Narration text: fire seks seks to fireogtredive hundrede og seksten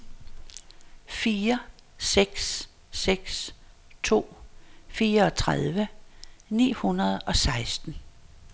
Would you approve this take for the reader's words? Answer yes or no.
no